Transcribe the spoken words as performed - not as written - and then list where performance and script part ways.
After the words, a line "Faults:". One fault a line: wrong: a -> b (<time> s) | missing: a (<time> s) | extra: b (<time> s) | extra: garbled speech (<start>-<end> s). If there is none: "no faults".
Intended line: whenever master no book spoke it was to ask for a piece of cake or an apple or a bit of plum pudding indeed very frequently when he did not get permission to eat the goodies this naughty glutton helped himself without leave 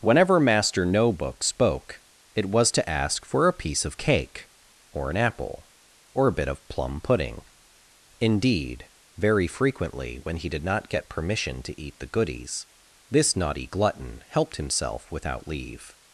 whenever master no book spoke it was to ask for a piece of cake or an apple or a bit of plum pudding indeed very frequently when he did not get permission to eat the goodies this naughty glutton helped himself without leave
Faults:
no faults